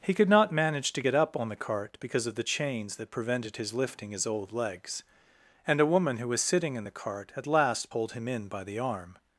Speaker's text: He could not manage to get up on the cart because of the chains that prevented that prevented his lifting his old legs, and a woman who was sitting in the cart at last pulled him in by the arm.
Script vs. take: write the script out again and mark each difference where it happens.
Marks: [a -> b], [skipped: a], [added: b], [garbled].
He could not manage to get up on the cart because of the chains that prevented [skipped: that prevented] his lifting his old legs, and a woman who was sitting in the cart at last pulled him in by the arm.